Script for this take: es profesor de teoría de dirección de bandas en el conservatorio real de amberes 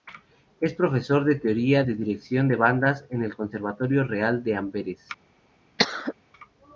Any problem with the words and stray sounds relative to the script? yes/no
yes